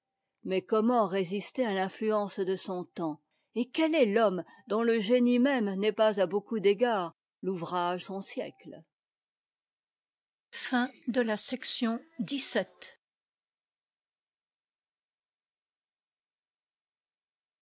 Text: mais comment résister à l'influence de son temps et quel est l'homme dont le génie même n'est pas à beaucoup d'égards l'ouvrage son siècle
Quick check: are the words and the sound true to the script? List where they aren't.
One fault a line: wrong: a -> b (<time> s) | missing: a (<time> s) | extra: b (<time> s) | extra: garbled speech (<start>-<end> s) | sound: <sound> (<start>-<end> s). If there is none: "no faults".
no faults